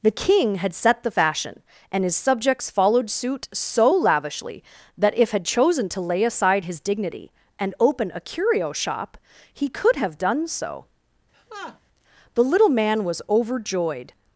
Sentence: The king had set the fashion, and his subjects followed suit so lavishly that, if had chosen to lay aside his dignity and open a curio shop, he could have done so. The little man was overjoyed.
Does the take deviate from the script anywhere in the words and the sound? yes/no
yes